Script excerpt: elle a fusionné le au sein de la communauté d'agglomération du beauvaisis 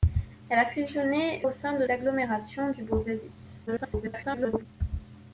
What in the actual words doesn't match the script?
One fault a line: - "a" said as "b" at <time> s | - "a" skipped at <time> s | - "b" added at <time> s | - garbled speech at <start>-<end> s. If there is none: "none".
- "le" skipped at 1.5 s
- "la communauté" skipped at 1.8 s
- garbled speech at 3.7-4.7 s